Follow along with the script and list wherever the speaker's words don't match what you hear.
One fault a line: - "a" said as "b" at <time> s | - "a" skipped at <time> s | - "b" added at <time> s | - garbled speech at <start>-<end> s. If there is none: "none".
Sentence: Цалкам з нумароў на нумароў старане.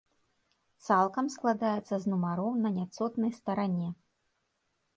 - "складаецца" added at 1.4 s
- "нумароў" said as "няцотнай" at 2.8 s